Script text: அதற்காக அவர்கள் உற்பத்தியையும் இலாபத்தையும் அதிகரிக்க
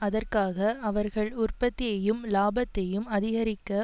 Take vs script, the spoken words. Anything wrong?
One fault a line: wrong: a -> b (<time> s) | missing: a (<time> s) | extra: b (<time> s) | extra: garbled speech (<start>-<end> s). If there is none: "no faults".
no faults